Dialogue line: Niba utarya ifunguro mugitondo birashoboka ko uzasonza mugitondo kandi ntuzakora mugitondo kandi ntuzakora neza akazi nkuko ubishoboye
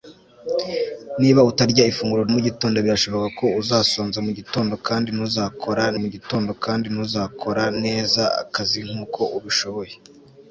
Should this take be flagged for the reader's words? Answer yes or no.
no